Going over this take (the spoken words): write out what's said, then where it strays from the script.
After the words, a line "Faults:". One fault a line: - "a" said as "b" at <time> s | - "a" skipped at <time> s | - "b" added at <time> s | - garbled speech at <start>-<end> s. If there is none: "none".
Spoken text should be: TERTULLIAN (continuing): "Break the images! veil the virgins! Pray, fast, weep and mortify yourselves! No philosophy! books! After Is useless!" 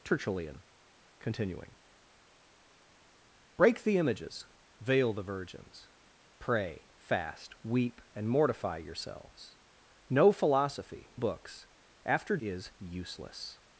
TERTULLIAN (continuing): "Break the images! veil the virgins! Pray, fast, weep and mortify yourselves! No philosophy! books! After Is useless!"
Faults:
none